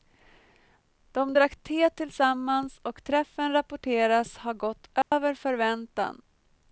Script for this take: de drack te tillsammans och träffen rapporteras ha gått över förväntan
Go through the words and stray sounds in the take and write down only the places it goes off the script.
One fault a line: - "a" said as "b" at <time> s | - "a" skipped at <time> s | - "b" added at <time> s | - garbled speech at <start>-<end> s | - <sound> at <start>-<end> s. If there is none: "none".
- dropout at 5.0-5.1 s